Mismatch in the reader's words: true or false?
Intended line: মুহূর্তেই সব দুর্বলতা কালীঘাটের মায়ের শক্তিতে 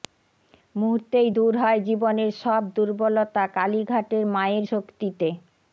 true